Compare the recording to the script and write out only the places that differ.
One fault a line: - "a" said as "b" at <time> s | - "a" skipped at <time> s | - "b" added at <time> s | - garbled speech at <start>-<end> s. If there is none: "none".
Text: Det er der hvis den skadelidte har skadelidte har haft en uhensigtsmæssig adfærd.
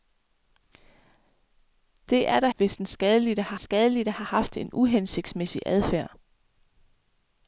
none